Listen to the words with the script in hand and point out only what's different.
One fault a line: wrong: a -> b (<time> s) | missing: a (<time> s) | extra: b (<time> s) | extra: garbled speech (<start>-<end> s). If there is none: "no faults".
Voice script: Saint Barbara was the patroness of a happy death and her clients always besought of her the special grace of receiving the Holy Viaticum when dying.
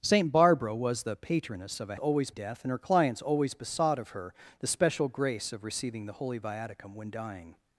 wrong: happy -> always (2.0 s)